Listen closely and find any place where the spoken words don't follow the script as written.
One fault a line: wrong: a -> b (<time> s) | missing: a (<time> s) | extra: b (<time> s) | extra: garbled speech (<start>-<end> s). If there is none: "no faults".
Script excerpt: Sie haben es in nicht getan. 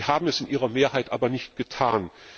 extra: ihrer Mehrheit aber (0.5 s)